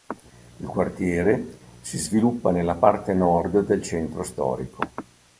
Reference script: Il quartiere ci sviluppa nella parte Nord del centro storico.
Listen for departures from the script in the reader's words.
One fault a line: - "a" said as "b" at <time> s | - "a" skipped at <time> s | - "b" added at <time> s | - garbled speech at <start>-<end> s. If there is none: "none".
- "ci" said as "si" at 1.8 s